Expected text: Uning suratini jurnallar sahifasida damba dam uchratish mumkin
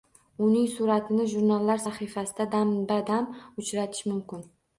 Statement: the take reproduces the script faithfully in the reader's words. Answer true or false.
true